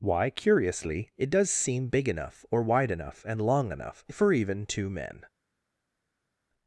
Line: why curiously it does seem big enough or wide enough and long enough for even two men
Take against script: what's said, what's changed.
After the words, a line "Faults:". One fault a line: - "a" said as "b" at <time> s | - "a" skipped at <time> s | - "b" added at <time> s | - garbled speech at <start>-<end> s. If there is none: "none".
why curiously it does seem big enough or wide enough and long enough for even two men
Faults:
none